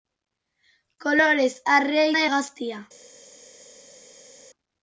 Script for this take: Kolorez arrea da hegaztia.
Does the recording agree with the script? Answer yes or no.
yes